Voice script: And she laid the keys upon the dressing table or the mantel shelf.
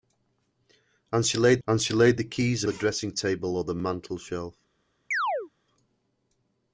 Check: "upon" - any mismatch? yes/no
yes